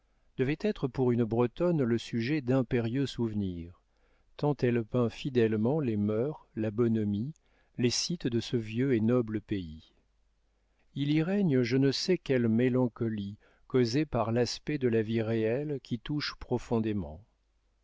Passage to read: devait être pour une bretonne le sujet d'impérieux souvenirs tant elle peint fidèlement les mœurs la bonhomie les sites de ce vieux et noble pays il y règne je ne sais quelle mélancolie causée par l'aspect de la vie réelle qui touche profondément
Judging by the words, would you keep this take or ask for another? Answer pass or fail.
pass